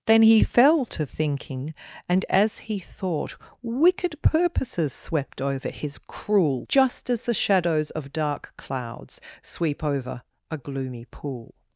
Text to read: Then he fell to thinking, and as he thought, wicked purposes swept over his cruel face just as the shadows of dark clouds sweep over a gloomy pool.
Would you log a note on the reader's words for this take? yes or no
yes